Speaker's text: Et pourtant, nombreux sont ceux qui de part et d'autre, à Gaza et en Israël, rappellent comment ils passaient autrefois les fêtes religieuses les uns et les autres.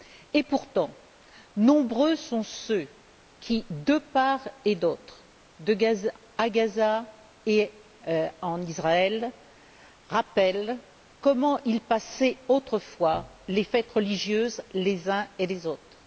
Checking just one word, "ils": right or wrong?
right